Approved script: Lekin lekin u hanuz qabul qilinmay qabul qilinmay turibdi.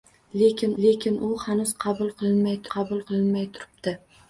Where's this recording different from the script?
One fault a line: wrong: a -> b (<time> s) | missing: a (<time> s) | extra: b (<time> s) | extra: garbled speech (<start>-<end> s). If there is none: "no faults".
no faults